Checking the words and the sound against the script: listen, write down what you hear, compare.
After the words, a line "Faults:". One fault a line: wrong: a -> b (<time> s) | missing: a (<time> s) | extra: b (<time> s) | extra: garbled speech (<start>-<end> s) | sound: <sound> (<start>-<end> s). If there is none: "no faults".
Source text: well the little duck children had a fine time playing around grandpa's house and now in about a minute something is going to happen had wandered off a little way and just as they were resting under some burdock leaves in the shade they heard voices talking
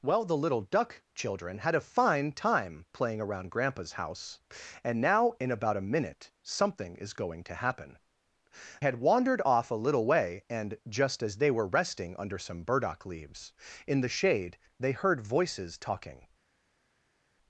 well the little duck children had a fine time playing around grandpa's house and now in about a minute something is going to happen had wandered off a little way and just as they were resting under some burdock leaves in the shade they heard voices talking
Faults:
no faults